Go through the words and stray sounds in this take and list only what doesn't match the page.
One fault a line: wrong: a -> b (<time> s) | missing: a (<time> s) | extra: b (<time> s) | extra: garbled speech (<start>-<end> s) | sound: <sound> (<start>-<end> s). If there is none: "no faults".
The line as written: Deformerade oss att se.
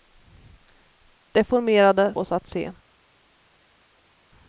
no faults